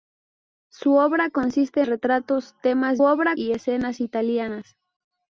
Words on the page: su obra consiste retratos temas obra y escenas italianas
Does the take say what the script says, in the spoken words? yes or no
yes